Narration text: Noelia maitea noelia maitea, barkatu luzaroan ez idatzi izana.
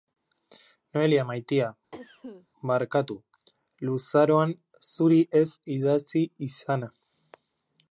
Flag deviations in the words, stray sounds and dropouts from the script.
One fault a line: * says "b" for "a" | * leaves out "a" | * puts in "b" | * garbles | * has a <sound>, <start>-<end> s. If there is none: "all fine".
* leaves out "noelia maitea"
* has a cough, 1.9-2.5 s
* puts in "zuri"